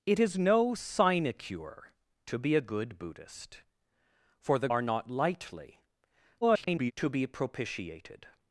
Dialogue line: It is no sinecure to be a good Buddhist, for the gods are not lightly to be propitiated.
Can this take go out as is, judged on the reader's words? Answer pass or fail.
fail